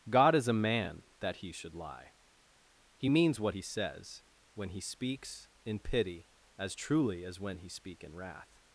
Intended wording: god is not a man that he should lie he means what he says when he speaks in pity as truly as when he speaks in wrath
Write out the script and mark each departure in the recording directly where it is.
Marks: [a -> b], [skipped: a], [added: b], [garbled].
god is [skipped: not] a man that he should lie he means what he says when he speaks in pity as truly as when he [speaks -> speak] in wrath